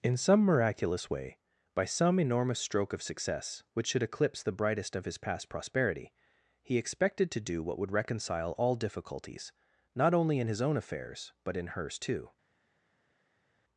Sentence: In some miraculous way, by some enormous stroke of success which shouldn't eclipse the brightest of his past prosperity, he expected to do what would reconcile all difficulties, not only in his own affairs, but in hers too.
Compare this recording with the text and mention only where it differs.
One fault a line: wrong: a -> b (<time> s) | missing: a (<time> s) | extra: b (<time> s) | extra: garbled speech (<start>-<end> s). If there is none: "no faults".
wrong: shouldn't -> should (3.9 s)